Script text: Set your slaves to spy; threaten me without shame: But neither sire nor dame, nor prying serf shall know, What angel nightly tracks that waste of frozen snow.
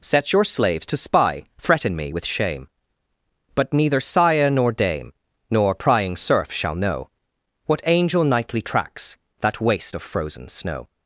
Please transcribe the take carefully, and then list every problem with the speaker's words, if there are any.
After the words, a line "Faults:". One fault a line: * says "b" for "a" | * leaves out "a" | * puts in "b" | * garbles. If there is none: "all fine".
Set your slaves to spy; threaten me with shame: But neither sire nor dame, nor prying serf shall know, What angel nightly tracks that waste of frozen snow.
Faults:
* says "with" for "without"